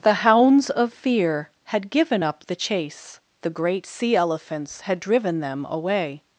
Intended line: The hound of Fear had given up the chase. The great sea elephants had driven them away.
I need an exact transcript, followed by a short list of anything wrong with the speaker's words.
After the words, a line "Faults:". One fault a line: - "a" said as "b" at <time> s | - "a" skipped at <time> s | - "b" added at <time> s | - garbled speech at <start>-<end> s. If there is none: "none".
The hounds of Fear had given up the chase. The great sea elephants had driven them away.
Faults:
- "hound" said as "hounds" at 0.2 s